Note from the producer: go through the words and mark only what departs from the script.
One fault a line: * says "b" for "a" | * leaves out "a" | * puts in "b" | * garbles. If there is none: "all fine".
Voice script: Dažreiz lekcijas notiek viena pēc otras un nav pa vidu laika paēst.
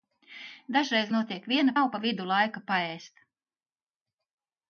* leaves out "lekcijas"
* leaves out "pēc otras un"